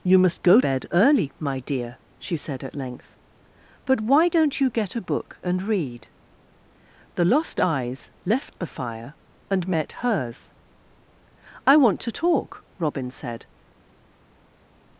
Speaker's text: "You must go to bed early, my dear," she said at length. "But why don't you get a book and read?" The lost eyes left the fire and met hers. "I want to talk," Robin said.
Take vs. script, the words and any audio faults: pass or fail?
fail